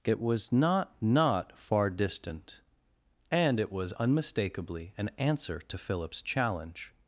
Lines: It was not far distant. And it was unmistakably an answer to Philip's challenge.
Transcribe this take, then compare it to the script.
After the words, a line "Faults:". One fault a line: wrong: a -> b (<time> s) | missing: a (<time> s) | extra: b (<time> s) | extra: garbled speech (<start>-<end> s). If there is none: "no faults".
It was not not far distant. And it was unmistakably an answer to Philip's challenge.
Faults:
extra: not (1.0 s)